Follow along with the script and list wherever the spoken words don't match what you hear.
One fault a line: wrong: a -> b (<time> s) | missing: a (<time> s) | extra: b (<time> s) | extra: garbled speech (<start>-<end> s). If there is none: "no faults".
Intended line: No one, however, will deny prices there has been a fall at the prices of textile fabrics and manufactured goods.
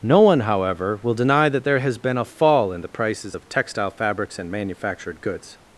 wrong: prices -> that (1.5 s)
wrong: at -> in (2.7 s)